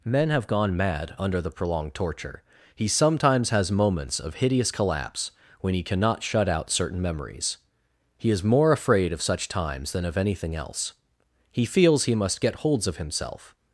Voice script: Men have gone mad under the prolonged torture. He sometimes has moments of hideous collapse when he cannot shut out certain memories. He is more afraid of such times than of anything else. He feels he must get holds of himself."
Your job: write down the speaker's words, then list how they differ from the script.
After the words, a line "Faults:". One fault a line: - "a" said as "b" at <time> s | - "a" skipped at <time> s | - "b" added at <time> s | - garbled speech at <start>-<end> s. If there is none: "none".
Men have gone mad under the prolonged torture. He sometimes has moments of hideous collapse when he cannot shut out certain memories. He is more afraid of such times than of anything else. He feels he must get holds of himself."
Faults:
none